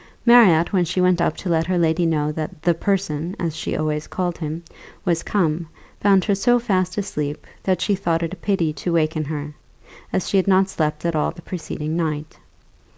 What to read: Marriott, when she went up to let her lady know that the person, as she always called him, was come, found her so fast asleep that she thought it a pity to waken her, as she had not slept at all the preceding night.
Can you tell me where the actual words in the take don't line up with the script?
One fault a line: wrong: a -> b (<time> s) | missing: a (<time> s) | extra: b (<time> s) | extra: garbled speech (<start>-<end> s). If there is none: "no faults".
no faults